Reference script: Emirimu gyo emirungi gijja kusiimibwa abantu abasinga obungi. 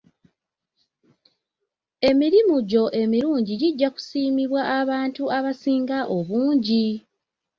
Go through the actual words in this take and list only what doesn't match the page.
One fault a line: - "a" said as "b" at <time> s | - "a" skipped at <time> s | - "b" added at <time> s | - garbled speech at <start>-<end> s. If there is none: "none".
none